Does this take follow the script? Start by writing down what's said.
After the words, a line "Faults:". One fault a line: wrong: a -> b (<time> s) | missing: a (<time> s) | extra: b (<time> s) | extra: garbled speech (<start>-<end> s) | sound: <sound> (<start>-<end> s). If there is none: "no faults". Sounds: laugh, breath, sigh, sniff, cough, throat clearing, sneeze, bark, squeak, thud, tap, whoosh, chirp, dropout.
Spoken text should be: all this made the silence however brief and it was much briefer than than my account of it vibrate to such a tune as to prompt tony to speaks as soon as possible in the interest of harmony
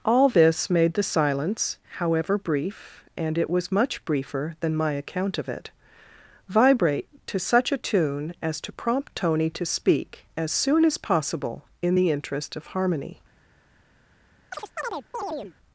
all this made the silence however brief and it was much briefer than my account of it vibrate to such a tune as to prompt tony to speak as soon as possible in the interest of harmony
Faults:
missing: than (4.8 s)
wrong: speaks -> speak (9.7 s)
sound: chirp (14.5-15.5 s)